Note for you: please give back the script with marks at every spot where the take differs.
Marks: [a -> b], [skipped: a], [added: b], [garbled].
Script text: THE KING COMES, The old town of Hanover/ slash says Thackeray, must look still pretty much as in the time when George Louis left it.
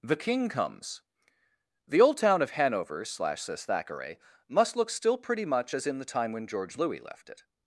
THE KING COMES, The old town of Hanover/ slash says Thackeray, must look still pretty much as in the time when George Louis left it.